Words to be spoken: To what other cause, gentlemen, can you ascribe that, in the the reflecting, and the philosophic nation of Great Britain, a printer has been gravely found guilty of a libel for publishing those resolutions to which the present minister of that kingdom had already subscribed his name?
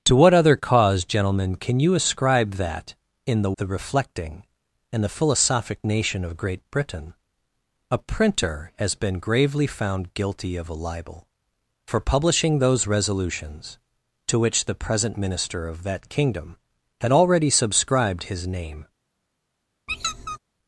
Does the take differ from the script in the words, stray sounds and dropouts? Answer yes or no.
yes